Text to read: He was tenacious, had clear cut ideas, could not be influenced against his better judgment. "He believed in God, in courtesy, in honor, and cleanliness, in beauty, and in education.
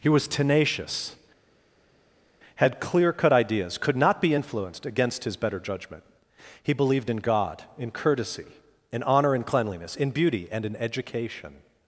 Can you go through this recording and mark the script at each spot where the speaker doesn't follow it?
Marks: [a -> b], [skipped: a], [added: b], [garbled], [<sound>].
He was tenacious, had clear cut ideas, could not be influenced against his better judgment. "He believed in God, in courtesy, in honor, and cleanliness, in beauty, and in education.